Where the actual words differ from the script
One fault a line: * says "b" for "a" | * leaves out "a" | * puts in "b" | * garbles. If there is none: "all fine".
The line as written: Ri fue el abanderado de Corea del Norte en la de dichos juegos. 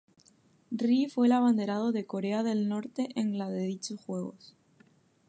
all fine